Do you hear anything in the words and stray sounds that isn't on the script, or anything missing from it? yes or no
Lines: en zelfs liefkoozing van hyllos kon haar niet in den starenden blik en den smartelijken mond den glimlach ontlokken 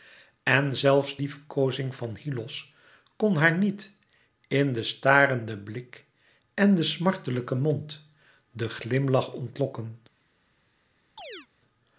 yes